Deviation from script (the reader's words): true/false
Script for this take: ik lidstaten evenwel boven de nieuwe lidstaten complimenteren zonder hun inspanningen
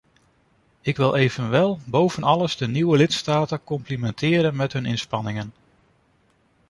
true